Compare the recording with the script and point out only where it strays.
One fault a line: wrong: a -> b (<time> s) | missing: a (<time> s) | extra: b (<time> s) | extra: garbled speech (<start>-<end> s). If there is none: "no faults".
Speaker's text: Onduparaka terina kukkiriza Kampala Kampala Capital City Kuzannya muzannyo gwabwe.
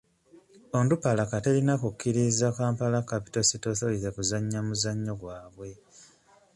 missing: Kampala (3.0 s)
extra: Authority (3.7 s)